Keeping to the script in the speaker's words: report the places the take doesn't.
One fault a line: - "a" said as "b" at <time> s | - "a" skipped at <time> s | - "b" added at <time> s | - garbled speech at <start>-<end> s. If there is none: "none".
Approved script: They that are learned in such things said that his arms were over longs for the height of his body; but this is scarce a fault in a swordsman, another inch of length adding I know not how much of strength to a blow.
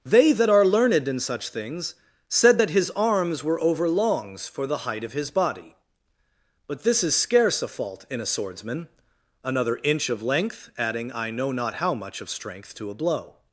none